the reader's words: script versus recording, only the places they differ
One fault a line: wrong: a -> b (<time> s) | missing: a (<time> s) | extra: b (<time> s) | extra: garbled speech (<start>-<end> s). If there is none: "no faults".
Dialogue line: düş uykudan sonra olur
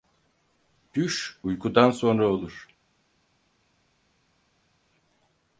no faults